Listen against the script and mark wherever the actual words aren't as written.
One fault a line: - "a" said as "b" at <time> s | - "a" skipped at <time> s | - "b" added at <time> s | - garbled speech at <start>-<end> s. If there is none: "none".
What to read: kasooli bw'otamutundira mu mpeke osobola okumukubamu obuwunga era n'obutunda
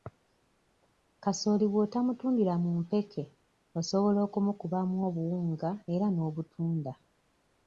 none